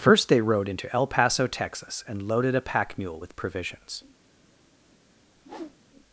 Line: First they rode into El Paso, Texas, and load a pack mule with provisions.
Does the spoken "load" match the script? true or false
false